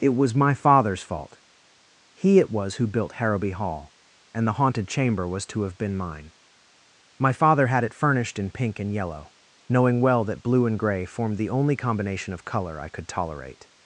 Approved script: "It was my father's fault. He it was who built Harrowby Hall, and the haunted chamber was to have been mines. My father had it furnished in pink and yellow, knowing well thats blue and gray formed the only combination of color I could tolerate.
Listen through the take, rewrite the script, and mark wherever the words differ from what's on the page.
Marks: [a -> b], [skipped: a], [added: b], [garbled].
"It was my father's fault. He it was who built Harrowby Hall, and the haunted chamber was to have been [mines. -> mine] My father had it furnished in pink and yellow, knowing well [thats -> that] blue and gray formed the only combination of color I could tolerate.